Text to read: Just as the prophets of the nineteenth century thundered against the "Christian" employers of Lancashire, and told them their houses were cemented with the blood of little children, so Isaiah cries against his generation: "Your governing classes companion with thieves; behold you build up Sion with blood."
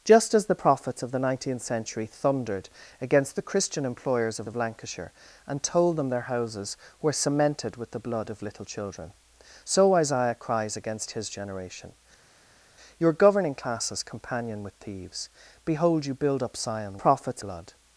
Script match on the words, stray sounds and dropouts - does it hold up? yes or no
no